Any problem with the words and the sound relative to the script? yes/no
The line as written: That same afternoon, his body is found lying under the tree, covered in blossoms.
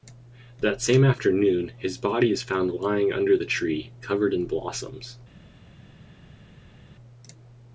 no